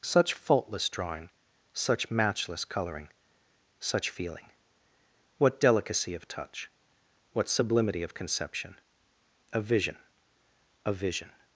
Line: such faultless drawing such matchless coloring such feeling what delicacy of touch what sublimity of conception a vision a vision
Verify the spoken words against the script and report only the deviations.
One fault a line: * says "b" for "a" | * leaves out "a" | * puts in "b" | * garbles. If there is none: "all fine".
all fine